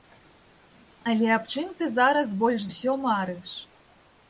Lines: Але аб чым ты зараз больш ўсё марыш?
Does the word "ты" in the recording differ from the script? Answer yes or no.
no